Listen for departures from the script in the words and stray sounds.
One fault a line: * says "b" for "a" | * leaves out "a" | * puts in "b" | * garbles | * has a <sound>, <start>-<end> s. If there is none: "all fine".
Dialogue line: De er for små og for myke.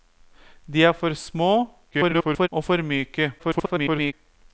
* garbles
* garbles